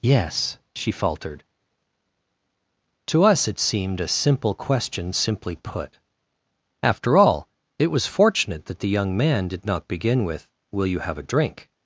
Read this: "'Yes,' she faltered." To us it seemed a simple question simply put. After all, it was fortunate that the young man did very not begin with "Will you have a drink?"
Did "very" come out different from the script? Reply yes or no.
yes